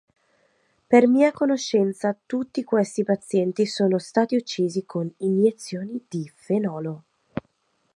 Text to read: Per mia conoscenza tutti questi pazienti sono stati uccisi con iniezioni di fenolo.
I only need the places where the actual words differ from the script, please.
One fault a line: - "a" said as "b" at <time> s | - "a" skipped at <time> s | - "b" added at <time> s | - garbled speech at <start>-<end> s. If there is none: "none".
none